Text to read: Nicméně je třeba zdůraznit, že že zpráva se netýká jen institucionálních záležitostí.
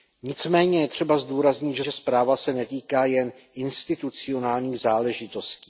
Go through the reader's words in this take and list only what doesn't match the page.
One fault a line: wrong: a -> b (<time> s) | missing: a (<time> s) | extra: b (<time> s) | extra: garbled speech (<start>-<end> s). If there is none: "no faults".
no faults